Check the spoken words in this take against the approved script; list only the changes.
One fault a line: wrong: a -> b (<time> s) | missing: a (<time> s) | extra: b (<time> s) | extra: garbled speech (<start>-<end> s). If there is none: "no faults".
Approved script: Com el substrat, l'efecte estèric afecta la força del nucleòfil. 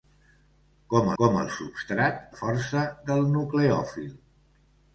extra: com (1.2 s)
missing: l'efecte estèric afecta (2.2 s)